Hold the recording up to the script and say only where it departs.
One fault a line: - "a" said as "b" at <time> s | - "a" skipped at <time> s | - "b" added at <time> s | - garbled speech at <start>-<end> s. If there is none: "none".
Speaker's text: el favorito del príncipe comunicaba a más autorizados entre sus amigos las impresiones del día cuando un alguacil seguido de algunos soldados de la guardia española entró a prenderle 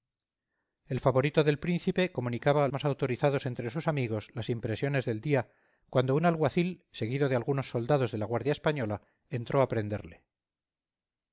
none